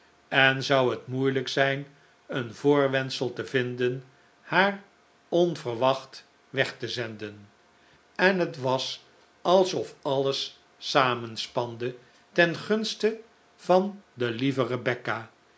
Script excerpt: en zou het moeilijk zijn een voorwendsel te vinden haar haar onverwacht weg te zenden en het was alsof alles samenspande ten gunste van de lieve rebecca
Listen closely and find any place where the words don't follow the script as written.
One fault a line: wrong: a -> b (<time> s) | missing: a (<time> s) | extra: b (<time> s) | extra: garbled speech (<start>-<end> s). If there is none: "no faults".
missing: haar (4.8 s)